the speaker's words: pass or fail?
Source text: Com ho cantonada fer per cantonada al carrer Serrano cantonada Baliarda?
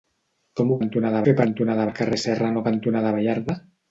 pass